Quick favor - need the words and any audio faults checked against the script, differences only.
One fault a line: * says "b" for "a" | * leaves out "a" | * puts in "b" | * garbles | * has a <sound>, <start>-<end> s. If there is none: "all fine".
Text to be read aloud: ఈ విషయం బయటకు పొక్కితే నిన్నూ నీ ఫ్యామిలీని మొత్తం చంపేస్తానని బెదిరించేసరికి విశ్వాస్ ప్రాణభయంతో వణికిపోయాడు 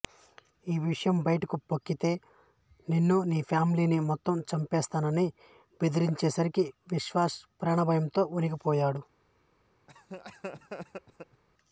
* has a laugh, 9.9-11.4 s